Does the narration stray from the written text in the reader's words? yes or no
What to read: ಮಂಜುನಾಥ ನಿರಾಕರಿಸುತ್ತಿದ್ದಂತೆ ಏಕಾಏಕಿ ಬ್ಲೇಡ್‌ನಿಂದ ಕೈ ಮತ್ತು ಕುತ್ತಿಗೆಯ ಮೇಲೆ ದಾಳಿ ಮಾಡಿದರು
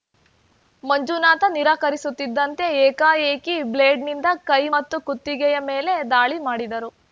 no